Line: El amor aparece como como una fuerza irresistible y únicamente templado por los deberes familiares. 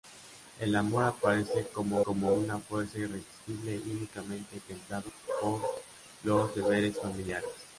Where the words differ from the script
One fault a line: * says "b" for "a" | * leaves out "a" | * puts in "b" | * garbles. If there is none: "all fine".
all fine